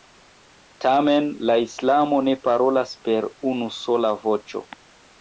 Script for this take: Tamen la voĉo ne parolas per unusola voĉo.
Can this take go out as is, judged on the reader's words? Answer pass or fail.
fail